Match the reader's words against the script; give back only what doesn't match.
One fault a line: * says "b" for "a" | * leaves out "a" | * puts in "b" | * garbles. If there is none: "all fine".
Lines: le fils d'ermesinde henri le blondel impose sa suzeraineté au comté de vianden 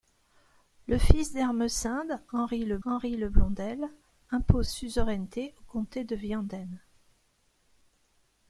* puts in "henri le"
* leaves out "sa"